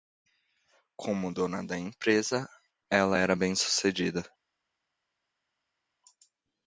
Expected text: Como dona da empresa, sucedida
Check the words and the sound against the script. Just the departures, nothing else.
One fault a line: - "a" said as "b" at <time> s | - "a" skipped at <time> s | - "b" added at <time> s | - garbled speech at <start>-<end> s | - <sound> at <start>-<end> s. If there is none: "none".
- "ela era bem" added at 2.9 s